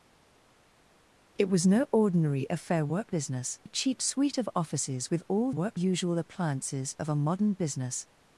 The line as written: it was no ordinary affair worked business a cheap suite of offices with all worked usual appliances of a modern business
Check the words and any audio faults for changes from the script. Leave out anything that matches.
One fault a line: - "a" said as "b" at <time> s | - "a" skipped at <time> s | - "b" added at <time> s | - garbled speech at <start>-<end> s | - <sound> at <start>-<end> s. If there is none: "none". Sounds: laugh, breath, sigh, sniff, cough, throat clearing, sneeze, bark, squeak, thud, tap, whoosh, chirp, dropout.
none